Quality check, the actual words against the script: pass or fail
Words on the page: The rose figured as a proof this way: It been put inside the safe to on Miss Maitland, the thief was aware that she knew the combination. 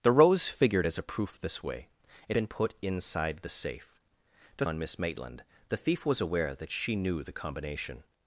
pass